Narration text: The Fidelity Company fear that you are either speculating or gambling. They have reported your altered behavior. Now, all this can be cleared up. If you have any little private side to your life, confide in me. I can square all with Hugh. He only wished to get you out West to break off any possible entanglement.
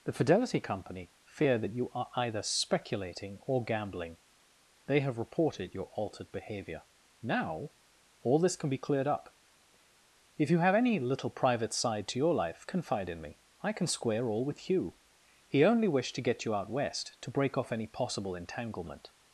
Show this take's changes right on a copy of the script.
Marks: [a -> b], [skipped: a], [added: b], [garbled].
The Fidelity Company fear that you are either speculating or gambling. They have reported your altered behavior. Now, all this can be cleared up. If you have any little private side to your life, confide in me. I can square all with Hugh. He only wished to get you out West to break off any possible entanglement.